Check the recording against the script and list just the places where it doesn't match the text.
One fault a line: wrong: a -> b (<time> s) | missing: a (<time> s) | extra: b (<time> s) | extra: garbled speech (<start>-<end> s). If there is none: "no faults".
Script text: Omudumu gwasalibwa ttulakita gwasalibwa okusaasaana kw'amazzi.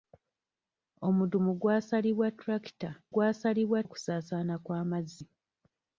no faults